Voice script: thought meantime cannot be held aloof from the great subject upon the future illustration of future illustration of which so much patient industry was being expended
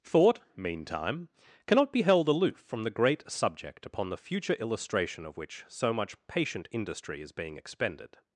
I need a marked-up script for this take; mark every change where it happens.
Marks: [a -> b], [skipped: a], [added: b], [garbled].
thought meantime cannot be held aloof from the great subject upon the future illustration of [skipped: future illustration of] which so much patient industry [was -> is] being expended